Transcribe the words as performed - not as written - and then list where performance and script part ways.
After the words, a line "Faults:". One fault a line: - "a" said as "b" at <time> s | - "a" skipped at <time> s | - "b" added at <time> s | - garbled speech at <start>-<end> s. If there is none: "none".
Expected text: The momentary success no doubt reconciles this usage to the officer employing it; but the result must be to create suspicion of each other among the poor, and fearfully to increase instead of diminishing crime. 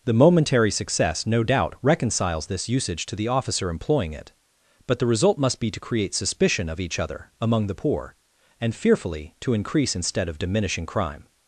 The momentary success no doubt reconciles this usage to the officer employing it; but the result must be to create suspicion of each other among the poor, and fearfully to increase instead of diminishing crime.
Faults:
none